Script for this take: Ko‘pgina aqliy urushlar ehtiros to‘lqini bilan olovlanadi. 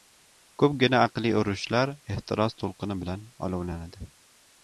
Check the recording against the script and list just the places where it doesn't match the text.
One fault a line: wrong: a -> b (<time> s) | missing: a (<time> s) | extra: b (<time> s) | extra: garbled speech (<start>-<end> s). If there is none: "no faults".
no faults